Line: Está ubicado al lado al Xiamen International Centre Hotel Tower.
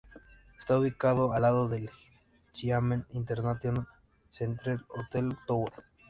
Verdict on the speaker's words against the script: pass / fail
fail